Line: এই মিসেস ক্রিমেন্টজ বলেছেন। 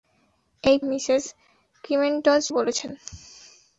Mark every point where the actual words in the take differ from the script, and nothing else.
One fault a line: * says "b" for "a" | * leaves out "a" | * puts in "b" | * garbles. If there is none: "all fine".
all fine